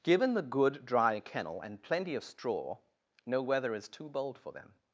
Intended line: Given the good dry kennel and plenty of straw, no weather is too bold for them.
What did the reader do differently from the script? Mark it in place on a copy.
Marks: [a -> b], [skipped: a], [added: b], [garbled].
Given the good dry kennel and plenty of straw, no weather is too bold for them.